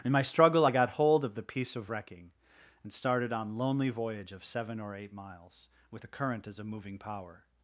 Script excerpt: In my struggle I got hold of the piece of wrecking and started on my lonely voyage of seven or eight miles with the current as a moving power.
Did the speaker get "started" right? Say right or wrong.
right